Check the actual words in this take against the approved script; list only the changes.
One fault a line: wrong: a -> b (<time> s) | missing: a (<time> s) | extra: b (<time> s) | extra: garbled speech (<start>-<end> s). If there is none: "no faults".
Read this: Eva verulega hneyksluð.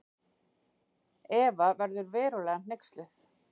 extra: verður (1.8 s)